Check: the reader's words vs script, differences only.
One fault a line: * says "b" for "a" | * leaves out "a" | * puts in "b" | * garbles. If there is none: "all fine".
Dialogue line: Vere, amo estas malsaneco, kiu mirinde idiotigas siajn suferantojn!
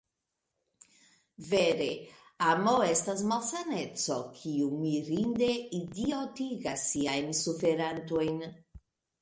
all fine